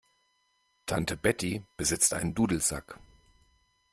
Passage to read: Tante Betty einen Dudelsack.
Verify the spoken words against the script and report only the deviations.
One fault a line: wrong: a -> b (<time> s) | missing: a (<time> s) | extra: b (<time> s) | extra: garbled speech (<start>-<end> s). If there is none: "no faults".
extra: besitzt (1.8 s)